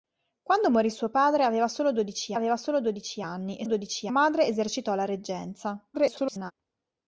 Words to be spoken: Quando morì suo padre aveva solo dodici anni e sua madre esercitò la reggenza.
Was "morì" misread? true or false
false